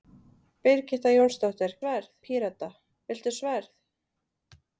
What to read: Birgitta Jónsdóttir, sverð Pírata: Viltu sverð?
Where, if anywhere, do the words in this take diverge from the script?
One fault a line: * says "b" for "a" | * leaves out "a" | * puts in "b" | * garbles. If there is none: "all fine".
all fine